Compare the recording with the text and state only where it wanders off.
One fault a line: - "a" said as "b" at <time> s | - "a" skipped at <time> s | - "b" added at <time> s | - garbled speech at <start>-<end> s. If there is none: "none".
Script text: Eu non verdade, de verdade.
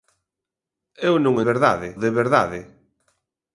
none